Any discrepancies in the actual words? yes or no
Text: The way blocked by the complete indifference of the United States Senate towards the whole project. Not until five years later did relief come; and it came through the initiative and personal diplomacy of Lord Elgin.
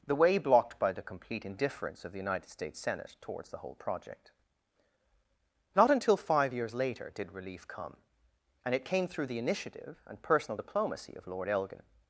no